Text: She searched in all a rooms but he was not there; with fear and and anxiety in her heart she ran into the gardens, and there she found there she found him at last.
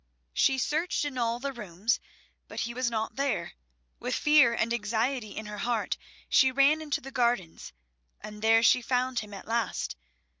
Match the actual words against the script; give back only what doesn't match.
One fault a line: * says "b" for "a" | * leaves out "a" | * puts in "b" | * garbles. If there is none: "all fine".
* says "the" for "a"
* leaves out "and"
* leaves out "there she found"